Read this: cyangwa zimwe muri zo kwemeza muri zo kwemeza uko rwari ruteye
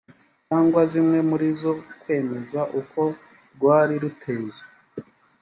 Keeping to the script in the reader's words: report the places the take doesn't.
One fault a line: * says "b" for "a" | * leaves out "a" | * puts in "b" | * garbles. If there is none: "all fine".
* leaves out "muri zo kwemeza"